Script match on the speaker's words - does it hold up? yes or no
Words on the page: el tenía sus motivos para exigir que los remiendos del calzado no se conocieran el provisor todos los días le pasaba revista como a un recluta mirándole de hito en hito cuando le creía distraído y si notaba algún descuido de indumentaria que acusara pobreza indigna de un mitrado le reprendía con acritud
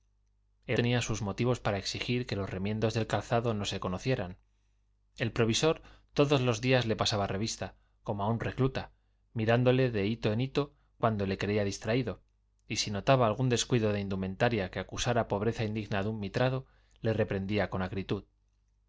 yes